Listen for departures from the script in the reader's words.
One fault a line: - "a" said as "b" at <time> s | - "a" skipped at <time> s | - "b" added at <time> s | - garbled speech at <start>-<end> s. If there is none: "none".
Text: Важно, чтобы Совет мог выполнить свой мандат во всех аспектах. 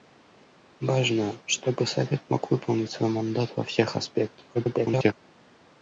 - garbled speech at 4.5-5.1 s